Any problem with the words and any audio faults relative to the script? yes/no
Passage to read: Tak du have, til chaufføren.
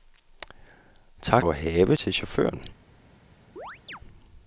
yes